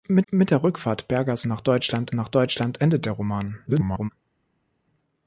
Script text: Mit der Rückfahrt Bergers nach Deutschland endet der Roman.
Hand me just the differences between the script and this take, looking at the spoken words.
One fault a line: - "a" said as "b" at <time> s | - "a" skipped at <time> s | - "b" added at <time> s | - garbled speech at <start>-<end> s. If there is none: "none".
- "mit" added at 0.3 s
- "nach Deutschland" added at 2.1 s
- garbled speech at 3.7-4.1 s